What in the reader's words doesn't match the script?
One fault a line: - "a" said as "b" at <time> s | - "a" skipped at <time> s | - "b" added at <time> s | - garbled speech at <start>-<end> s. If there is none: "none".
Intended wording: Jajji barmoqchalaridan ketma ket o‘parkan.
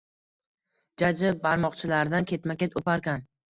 none